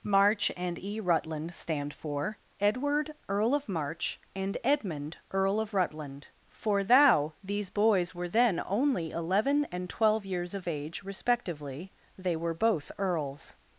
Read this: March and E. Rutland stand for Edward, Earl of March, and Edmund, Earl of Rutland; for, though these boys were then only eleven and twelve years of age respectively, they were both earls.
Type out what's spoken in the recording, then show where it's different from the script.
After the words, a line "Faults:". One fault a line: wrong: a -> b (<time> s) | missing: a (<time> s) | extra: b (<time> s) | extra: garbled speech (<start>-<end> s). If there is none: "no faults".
March and E. Rutland stand for Edward, Earl of March, and Edmund, Earl of Rutland; for, thou these boys were then only eleven and twelve years of age respectively, they were both earls.
Faults:
wrong: though -> thou (6.8 s)